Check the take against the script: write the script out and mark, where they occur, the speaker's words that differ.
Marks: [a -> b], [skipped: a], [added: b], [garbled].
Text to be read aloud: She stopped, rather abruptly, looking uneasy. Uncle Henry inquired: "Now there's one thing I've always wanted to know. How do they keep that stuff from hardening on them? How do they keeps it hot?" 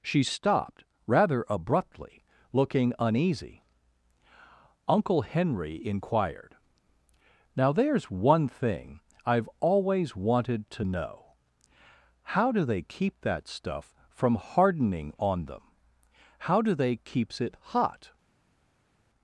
She stopped, rather abruptly, looking uneasy. Uncle Henry inquired: "Now there's one thing I've always wanted to know. How do they keep that stuff from hardening on them? How do they keeps it hot?"